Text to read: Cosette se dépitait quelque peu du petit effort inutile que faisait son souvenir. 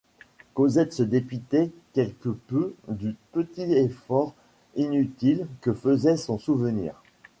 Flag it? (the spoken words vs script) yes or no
no